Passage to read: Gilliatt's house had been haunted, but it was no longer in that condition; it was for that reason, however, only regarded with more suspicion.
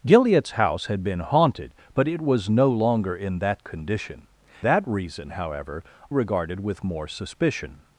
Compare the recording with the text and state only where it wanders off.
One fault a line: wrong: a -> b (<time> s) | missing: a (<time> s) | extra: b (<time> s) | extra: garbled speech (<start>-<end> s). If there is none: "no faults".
missing: it was for (4.3 s)
missing: only (5.8 s)